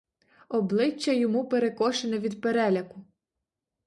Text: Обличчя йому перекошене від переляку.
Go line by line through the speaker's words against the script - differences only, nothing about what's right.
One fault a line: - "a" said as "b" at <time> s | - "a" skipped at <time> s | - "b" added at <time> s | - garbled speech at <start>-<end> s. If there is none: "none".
none